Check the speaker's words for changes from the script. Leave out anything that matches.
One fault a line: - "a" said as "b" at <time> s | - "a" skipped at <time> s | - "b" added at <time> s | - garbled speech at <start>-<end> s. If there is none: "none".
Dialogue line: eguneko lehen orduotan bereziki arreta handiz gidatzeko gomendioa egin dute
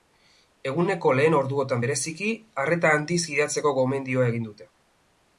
none